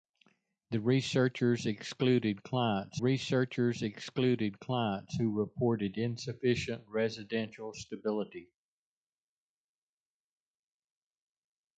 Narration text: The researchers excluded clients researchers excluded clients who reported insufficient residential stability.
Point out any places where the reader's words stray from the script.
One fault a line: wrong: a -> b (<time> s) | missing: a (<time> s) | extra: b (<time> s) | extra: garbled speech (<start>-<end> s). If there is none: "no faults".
no faults